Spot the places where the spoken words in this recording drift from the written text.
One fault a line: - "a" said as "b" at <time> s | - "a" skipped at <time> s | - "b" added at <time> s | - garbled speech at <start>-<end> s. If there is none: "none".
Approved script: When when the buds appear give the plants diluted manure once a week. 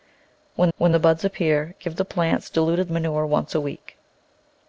none